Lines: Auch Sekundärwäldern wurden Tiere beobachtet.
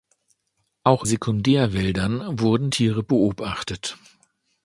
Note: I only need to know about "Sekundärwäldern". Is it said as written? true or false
true